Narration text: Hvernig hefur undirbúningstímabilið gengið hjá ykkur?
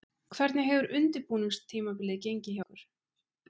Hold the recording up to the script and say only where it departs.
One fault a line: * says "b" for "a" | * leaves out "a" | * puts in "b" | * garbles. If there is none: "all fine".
* leaves out "hjá"